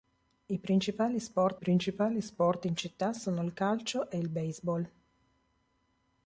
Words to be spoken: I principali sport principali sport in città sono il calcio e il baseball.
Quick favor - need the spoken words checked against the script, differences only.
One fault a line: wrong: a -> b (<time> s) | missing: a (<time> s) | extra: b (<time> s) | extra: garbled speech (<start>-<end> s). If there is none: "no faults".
no faults